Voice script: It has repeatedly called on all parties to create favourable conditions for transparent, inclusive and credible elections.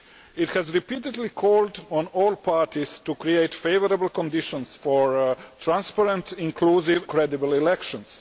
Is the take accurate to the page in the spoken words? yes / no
no